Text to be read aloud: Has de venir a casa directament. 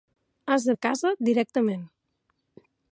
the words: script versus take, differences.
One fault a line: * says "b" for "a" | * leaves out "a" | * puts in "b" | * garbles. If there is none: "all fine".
* leaves out "venir"